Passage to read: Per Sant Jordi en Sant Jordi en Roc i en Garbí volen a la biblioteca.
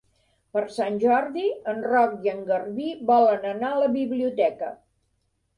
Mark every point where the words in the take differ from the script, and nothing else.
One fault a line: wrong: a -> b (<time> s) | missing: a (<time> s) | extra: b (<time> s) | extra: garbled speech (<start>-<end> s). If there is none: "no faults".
missing: Sant Jordi en (1.8 s)
extra: anar (3.5 s)